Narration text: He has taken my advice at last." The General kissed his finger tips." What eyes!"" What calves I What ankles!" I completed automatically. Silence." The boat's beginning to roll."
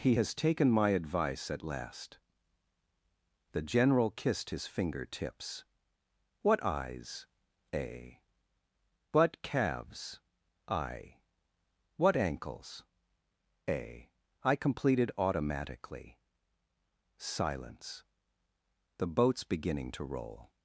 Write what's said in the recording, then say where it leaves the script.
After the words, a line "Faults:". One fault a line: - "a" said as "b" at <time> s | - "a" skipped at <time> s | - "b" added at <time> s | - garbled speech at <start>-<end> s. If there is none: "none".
He has taken my advice at last." The General kissed his finger tips." What eyes!"" a What calves I What ankles!" a I completed automatically. Silence." The boat's beginning to roll."
Faults:
- "a" added at 7.7 s
- "a" added at 13.7 s